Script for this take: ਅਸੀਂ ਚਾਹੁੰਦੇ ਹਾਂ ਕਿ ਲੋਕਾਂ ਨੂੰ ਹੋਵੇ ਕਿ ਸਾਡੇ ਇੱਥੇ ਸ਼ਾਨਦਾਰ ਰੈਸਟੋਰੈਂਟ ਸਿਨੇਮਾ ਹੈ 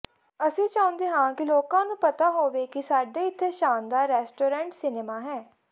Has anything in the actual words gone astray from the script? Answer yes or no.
yes